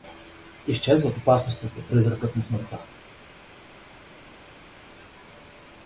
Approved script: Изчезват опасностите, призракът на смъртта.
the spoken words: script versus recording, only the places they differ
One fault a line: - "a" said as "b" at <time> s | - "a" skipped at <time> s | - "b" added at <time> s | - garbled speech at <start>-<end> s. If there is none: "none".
none